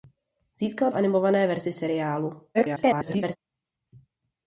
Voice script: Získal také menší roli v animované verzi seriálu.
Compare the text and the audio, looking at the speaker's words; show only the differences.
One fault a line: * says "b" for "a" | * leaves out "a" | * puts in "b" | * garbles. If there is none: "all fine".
* leaves out "také menší roli"
* garbles